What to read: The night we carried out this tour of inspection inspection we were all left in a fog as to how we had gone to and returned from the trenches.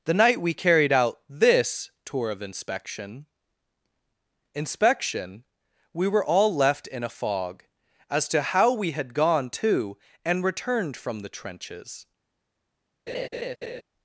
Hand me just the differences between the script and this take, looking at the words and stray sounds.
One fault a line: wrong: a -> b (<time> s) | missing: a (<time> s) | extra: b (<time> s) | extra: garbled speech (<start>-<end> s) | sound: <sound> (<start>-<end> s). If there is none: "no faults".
sound: laugh (13.1-13.8 s)